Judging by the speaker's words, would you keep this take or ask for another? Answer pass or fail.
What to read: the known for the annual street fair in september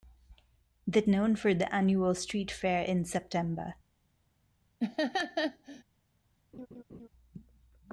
pass